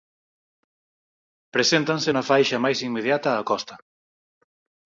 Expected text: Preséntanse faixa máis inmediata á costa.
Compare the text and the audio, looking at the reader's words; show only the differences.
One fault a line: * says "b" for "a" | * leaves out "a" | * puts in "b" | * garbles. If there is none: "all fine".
* puts in "na"